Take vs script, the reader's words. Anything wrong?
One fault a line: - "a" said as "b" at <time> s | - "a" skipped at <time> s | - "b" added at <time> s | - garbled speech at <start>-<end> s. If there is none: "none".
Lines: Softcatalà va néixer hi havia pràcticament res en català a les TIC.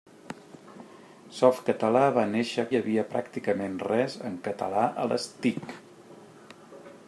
none